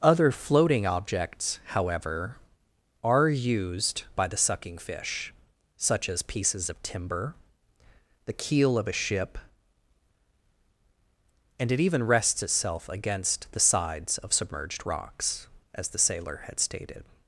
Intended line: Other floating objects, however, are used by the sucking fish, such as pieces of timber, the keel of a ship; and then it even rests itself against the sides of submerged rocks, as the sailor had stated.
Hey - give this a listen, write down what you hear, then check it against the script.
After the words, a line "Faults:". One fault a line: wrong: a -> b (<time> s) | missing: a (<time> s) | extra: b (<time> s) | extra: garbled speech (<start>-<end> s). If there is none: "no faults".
Other floating objects, however, are used by the sucking fish, such as pieces of timber, the keel of a ship; and it even rests itself against the sides of submerged rocks, as the sailor had stated.
Faults:
missing: then (11.7 s)